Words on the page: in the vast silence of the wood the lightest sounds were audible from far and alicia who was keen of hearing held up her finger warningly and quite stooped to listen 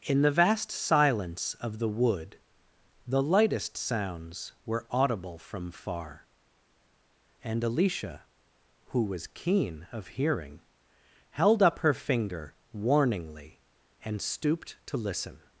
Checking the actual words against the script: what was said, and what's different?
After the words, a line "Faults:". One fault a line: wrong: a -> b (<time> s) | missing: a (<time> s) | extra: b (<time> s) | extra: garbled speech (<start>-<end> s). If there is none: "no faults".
in the vast silence of the wood the lightest sounds were audible from far and alicia who was keen of hearing held up her finger warningly and stooped to listen
Faults:
missing: quite (14.2 s)